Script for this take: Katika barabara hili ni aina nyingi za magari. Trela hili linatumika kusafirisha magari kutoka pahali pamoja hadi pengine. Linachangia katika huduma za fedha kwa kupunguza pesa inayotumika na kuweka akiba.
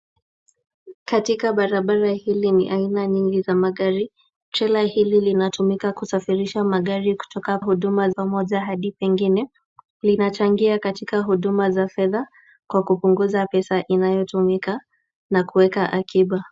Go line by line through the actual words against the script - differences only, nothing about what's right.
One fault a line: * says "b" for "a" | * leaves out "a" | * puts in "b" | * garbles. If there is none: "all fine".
* says "huduma" for "pahali"